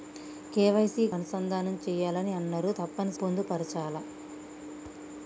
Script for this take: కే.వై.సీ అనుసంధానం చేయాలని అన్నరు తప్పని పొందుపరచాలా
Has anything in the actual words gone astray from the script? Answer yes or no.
no